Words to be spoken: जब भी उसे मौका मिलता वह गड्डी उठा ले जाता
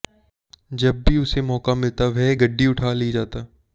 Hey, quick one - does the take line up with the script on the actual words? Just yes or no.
yes